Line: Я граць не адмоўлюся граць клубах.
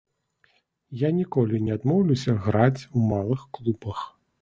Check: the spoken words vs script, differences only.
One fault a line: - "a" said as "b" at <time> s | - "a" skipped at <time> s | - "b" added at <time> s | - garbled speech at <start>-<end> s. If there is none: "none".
- "граць" said as "ніколі" at 1.2 s
- "у малых" added at 2.9 s